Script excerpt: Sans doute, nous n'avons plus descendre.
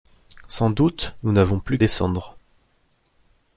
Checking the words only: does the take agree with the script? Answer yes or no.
yes